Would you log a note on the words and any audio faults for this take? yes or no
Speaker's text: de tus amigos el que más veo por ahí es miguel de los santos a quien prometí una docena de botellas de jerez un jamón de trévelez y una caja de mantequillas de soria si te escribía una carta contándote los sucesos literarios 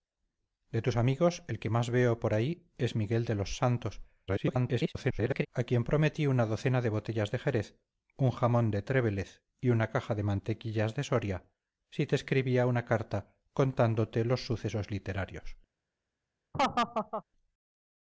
yes